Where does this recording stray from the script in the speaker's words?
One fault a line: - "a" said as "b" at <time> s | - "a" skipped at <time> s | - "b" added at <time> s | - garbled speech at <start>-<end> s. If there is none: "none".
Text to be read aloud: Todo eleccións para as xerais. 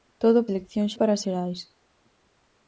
none